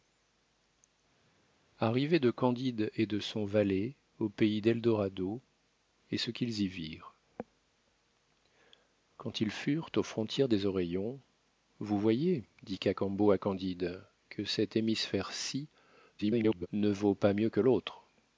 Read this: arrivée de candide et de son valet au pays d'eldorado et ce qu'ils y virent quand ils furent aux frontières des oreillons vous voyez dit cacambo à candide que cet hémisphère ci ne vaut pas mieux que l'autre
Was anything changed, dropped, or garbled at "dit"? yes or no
no